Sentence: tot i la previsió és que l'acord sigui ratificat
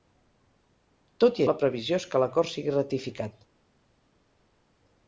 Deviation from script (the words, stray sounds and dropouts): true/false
false